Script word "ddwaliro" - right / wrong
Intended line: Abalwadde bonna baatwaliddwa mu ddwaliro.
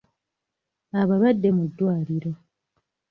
right